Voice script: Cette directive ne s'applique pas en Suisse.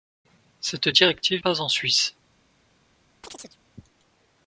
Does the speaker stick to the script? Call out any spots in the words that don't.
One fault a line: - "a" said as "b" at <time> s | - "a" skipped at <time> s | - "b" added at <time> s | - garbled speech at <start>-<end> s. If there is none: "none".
- "ne s'applique" skipped at 1.4 s